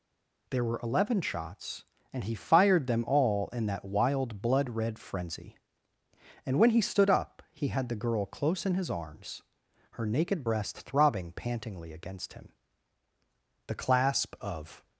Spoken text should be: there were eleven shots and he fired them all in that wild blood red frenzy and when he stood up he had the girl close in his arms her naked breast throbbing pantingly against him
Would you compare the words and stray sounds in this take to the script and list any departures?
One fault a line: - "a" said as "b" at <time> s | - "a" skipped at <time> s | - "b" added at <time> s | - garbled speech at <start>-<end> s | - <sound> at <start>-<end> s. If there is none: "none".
- "the clasp of" added at 13.7 s